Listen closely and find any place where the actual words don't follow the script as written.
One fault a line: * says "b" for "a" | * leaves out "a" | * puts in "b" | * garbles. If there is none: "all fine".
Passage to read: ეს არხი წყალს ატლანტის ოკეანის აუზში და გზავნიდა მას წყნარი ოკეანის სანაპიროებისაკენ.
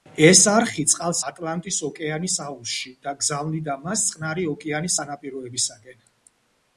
all fine